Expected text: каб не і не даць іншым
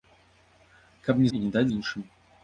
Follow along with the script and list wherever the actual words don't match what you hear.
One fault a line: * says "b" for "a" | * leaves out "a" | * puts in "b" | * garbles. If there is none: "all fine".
all fine